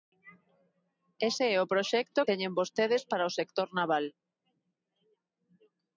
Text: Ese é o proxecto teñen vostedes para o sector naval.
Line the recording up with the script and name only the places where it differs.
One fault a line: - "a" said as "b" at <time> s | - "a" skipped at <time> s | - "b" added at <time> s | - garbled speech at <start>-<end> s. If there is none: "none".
none